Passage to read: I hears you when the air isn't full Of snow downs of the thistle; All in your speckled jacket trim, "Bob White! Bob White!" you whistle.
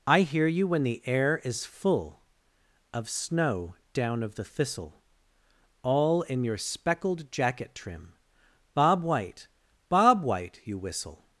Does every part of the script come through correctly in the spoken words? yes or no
no